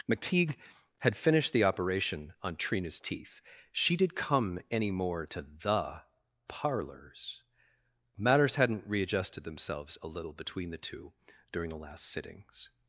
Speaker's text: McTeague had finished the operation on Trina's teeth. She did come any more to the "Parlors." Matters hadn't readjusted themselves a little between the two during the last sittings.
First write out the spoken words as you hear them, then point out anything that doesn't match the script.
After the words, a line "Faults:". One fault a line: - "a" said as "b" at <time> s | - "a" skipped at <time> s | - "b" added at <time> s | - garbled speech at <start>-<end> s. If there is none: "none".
McTeague had finished the operation on Trina's teeth. She did come any more to the "Parlors." Matters hadn't readjusted themselves a little between the two during the last sittings.
Faults:
none